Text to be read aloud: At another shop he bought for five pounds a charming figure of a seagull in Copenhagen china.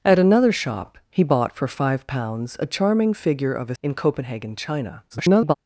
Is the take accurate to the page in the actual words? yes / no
no